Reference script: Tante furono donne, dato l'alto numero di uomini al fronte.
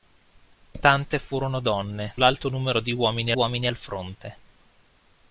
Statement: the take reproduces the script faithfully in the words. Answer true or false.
false